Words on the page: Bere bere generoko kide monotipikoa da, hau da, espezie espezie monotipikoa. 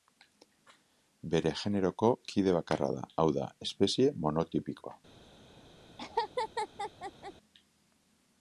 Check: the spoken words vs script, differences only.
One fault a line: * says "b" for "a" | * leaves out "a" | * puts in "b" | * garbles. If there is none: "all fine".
* leaves out "bere"
* says "bakarra" for "monotipikoa"
* leaves out "espezie"